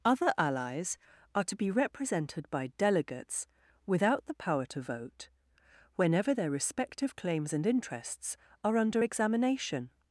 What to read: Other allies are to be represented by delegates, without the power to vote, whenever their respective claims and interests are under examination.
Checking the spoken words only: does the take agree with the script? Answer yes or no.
yes